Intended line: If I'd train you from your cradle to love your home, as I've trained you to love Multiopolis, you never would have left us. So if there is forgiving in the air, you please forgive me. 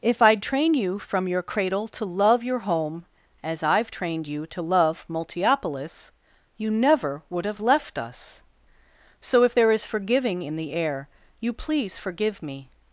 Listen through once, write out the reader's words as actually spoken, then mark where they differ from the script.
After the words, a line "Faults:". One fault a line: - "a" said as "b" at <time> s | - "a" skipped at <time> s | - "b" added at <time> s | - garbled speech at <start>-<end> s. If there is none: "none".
If I'd train you from your cradle to love your home, as I've trained you to love Multiopolis, you never would have left us. So if there is forgiving in the air, you please forgive me.
Faults:
none